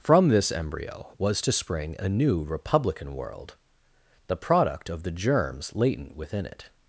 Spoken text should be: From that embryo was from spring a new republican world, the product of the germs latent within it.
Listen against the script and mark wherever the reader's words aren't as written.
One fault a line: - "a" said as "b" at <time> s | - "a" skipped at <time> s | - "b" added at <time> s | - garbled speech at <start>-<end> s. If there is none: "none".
- "that" said as "this" at 0.3 s
- "from" said as "to" at 1.4 s